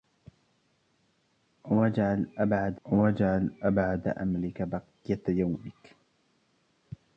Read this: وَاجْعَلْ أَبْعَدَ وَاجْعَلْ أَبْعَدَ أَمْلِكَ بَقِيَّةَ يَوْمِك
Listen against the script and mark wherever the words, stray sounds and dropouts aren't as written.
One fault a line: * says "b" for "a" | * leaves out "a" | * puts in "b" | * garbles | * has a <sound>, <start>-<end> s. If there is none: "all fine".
all fine